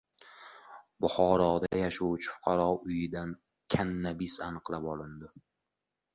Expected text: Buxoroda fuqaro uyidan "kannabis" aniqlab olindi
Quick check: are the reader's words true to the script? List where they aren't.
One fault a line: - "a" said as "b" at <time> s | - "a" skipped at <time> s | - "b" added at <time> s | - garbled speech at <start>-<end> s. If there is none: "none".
- "yashovchi" added at 1.8 s